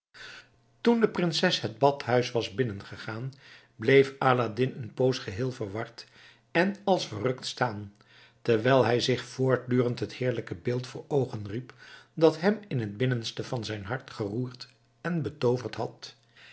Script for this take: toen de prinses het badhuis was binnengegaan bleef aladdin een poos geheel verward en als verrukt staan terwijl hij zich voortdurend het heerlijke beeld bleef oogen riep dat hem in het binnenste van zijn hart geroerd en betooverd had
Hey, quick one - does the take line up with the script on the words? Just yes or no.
no